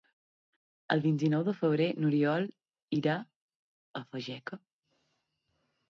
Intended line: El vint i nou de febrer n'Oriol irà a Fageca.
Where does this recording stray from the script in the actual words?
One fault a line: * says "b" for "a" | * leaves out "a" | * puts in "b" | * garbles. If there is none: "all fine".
all fine